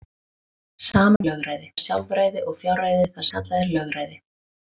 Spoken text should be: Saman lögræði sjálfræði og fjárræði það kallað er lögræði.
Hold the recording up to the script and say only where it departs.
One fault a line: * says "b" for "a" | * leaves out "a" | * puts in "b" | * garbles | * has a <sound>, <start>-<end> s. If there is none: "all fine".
* has a dropout, 1.2-1.2 s